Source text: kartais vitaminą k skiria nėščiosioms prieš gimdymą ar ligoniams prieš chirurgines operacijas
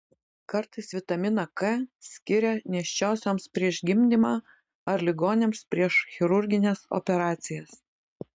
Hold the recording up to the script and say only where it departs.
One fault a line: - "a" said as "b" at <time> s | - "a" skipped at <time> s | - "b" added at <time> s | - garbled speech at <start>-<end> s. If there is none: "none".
none